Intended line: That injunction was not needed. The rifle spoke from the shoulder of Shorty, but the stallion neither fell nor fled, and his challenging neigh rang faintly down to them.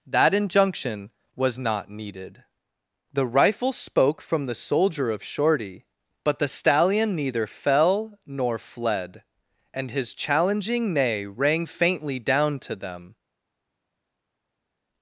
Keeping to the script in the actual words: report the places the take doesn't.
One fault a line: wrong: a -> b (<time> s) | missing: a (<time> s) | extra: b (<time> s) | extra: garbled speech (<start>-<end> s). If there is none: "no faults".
wrong: shoulder -> soldier (4.5 s)